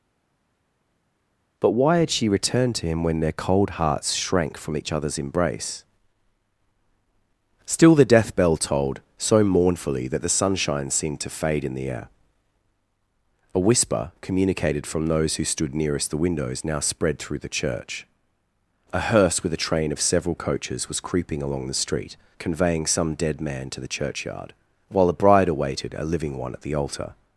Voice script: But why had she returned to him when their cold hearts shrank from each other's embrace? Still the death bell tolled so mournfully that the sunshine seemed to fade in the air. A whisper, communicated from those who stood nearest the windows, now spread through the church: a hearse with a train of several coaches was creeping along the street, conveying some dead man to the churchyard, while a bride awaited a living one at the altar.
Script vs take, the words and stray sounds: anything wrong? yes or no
no